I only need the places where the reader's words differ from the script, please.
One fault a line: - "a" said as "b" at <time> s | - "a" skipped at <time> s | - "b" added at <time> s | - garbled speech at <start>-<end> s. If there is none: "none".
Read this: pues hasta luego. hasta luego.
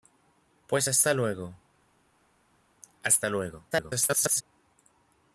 - garbled speech at 3.7-4.4 s